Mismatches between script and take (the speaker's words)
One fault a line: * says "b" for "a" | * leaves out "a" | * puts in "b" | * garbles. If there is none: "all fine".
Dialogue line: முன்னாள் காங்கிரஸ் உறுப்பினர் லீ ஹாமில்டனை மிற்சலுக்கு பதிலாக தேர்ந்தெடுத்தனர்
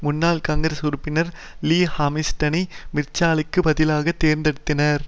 all fine